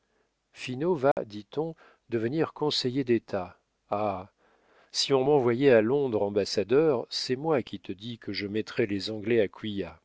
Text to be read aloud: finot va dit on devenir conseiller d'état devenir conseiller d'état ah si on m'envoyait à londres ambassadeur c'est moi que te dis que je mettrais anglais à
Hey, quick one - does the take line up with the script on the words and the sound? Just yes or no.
no